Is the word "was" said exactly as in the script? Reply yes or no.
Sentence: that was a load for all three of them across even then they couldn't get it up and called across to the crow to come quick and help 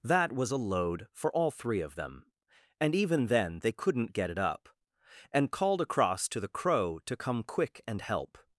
yes